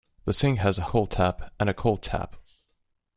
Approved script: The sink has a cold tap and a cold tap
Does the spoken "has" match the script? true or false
true